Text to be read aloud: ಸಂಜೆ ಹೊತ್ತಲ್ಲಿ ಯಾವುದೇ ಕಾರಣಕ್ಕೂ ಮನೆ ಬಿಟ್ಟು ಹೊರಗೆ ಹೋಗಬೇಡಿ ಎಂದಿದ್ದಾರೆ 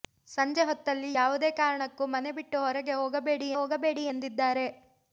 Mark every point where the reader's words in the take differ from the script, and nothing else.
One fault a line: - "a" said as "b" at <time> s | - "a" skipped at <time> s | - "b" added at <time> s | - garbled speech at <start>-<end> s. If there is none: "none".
- "ಹೋಗಬೇಡಿ" added at 3.6 s